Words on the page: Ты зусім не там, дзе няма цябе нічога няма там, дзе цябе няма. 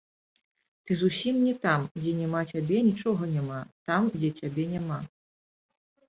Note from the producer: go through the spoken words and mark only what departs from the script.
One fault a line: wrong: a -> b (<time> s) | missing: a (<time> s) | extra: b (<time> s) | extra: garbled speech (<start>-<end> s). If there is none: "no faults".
no faults